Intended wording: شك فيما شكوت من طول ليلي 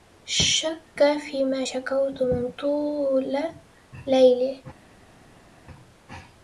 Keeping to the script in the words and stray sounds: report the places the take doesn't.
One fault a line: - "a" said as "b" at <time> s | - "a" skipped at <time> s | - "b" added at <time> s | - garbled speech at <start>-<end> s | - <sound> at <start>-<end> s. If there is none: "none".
none